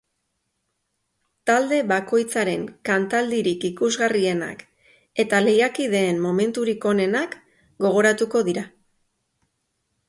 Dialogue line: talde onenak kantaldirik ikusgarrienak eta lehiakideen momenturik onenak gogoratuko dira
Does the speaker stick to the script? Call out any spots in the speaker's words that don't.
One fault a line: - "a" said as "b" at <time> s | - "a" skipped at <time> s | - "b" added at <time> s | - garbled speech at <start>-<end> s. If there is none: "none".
- "onenak" said as "bakoitzaren" at 1.9 s